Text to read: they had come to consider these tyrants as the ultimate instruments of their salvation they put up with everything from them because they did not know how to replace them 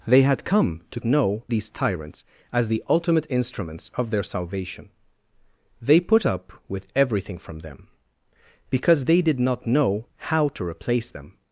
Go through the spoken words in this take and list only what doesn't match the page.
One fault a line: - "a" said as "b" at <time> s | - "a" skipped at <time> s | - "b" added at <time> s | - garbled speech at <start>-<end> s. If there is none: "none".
- "consider" said as "know" at 1.0 s